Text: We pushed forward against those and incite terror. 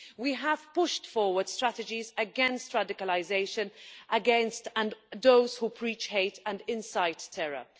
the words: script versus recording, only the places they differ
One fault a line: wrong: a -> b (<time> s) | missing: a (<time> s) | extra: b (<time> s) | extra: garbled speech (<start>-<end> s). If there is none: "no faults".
extra: have (0.3 s)
extra: strategies (1.5 s)
extra: radicalisation against (2.7 s)
extra: who preach hate (5.6 s)